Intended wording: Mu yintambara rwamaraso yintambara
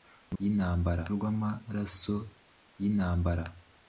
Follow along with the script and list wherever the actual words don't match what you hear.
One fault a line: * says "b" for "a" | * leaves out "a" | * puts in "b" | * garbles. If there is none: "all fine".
all fine